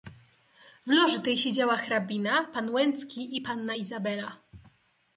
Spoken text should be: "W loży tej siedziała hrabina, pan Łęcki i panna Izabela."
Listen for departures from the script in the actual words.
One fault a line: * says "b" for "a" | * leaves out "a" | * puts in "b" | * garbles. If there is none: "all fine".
all fine